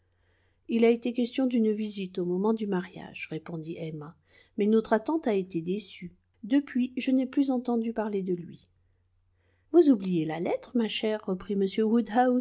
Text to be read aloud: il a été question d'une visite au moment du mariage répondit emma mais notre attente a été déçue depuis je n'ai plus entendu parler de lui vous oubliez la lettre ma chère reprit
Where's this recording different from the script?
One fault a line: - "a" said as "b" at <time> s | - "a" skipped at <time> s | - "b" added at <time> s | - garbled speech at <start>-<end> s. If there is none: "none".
none